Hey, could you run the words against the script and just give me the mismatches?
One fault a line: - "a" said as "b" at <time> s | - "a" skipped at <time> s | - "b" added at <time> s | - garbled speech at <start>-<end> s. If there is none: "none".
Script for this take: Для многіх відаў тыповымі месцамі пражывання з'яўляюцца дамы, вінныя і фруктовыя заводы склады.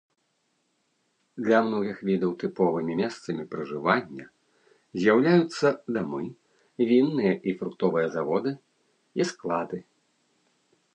- "і" added at 9.2 s